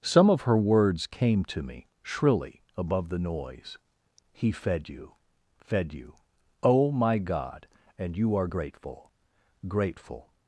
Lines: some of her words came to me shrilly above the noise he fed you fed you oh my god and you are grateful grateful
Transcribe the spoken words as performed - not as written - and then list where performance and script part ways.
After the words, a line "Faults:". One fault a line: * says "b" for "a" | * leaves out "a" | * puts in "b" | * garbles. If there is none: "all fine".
some of her words came to me shrilly above the noise he fed you fed you oh my god and you are grateful grateful
Faults:
all fine